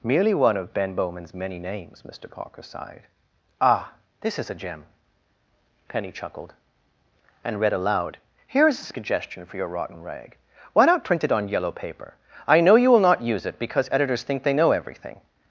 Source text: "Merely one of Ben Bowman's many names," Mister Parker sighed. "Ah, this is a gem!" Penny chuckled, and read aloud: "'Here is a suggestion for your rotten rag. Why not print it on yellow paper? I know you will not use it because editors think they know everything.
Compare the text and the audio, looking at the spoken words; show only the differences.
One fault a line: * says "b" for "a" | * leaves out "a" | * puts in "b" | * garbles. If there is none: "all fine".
all fine